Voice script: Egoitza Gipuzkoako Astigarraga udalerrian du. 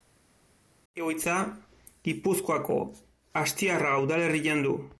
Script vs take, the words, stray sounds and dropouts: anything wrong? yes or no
no